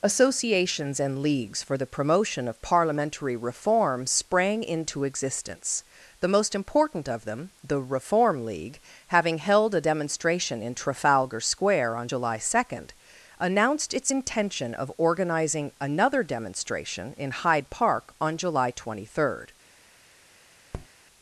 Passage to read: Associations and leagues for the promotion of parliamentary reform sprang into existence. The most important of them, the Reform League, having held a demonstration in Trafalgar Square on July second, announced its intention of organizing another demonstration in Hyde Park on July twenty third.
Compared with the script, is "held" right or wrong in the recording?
right